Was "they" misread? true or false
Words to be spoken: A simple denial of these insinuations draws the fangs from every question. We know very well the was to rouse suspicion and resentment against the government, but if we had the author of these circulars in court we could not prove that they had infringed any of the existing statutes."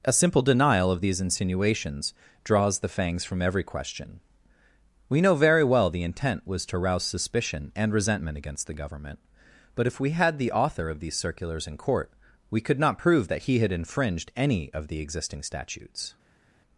true